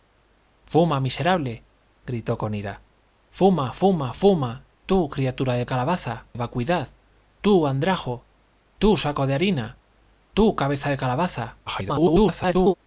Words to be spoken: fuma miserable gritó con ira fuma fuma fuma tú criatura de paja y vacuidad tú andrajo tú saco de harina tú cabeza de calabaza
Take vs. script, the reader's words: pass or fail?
fail